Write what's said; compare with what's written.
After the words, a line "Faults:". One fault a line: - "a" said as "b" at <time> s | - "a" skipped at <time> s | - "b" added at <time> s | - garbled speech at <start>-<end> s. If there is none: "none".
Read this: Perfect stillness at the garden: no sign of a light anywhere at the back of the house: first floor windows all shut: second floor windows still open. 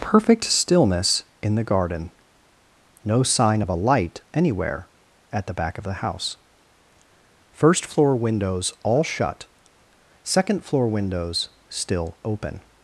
Perfect stillness in the garden: no sign of a light anywhere at the back of the house: first floor windows all shut: second floor windows still open.
Faults:
- "at" said as "in" at 1.4 s